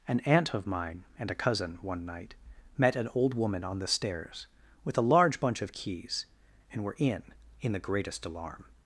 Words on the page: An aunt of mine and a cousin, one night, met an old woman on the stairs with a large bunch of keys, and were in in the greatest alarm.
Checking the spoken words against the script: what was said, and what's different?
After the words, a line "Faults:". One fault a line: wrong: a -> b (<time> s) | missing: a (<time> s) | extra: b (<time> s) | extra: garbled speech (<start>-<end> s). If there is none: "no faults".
An aunt of mine and a cousin, one night, met an old woman on the stairs with a large bunch of keys, and were in in the greatest alarm.
Faults:
no faults